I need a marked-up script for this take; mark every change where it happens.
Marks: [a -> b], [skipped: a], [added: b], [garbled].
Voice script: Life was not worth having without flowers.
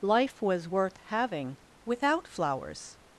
Life was [skipped: not] worth having without flowers.